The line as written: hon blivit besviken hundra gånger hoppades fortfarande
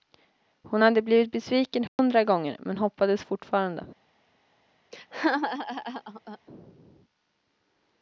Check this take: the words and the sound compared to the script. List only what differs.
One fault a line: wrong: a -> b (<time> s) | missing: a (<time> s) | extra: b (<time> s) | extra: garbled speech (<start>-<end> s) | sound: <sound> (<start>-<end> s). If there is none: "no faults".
extra: hade (0.8 s)
sound: dropout (1.9-2.0 s)
extra: men (2.6 s)
sound: laugh (4.9-6.4 s)